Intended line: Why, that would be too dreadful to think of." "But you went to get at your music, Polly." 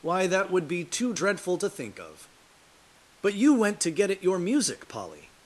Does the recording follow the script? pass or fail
pass